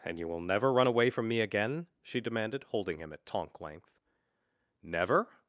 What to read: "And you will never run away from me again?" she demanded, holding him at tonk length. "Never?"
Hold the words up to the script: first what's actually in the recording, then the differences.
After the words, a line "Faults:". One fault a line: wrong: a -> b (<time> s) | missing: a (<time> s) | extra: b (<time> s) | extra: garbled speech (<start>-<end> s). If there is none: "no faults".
"And you will never run away from me again?" she demanded, holding him at tonk length. "Never?"
Faults:
no faults